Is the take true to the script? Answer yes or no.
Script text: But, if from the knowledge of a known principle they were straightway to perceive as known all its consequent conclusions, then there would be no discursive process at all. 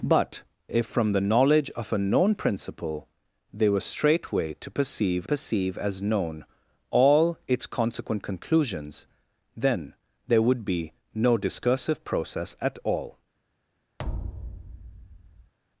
no